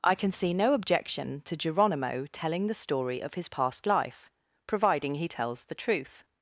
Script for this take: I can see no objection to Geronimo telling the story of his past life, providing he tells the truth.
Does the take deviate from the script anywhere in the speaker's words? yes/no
no